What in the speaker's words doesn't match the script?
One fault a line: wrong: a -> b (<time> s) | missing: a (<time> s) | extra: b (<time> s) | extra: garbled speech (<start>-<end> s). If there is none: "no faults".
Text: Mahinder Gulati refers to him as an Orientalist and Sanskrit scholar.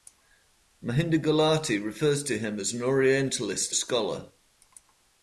missing: and Sanskrit (3.7 s)